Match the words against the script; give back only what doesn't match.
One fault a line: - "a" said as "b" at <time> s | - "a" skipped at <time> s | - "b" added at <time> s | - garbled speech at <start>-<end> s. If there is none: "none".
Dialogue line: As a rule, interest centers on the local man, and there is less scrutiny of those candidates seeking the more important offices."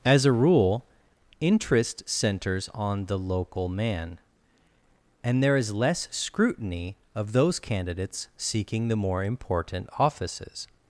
none